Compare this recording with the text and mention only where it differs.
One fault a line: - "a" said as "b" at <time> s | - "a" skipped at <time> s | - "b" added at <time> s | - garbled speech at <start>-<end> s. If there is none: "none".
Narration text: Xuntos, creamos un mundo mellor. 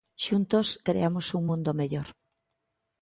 none